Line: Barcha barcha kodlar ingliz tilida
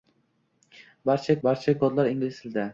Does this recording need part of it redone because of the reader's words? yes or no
no